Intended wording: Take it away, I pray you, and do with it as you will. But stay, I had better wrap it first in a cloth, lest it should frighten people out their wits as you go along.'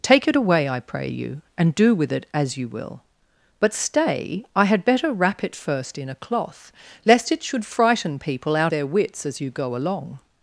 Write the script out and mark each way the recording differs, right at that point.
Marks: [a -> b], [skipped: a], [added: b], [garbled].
Take it away, I pray you, and do with it as you will. But stay, I had better wrap it first in a cloth, lest it should frighten people out their wits as you go along.'